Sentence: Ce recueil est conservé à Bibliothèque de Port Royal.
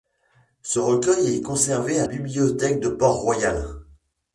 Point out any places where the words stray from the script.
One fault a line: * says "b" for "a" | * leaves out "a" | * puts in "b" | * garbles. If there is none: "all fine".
all fine